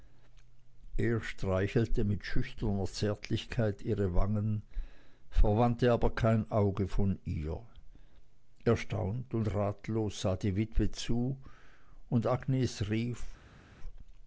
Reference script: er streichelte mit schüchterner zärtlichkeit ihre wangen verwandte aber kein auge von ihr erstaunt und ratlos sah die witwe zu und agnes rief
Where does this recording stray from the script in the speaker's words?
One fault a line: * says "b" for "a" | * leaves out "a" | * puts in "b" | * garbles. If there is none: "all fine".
all fine